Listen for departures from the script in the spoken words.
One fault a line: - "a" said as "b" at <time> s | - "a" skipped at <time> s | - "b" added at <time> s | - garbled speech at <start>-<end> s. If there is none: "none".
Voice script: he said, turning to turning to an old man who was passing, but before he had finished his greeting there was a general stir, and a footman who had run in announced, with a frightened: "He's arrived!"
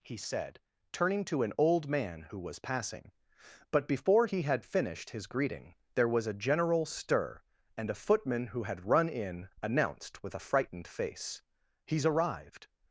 - "turning to" skipped at 1.4 s
- "face" added at 10.9 s